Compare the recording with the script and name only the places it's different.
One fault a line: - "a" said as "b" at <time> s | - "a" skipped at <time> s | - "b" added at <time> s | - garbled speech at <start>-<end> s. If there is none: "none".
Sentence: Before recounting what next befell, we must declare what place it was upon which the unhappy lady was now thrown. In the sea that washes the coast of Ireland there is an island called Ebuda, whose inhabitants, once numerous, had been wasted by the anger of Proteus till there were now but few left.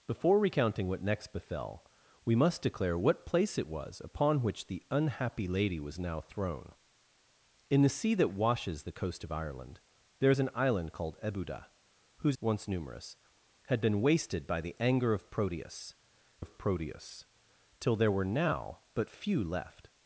- "inhabitants" skipped at 12.4 s
- "of Proteus" added at 16.4 s